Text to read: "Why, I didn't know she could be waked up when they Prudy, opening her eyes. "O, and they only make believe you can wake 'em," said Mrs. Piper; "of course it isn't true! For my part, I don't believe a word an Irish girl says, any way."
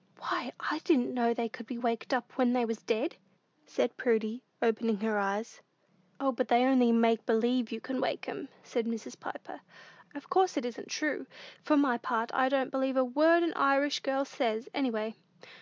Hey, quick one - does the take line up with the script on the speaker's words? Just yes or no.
no